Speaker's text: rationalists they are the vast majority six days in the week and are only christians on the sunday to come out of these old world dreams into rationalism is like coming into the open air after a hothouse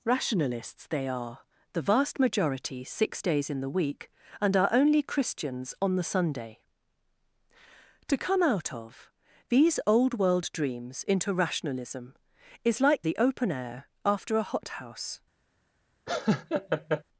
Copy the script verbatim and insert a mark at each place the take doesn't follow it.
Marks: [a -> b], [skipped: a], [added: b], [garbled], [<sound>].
rationalists they are the vast majority six days in the week and are only christians on the sunday to come out of these old world dreams into rationalism is like [skipped: coming into] the open air after a hothouse [laugh]